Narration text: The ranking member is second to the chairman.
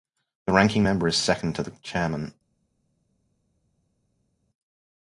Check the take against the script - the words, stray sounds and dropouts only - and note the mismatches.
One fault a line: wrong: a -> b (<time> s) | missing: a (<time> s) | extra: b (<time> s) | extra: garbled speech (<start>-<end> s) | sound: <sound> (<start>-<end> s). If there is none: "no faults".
no faults